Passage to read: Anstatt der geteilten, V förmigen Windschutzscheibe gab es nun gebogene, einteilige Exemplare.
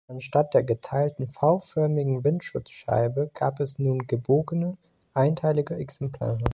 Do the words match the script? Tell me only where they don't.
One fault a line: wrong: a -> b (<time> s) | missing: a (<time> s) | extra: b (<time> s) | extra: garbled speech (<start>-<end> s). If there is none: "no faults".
no faults